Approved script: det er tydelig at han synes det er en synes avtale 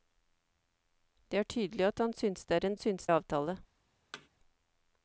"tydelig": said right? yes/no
yes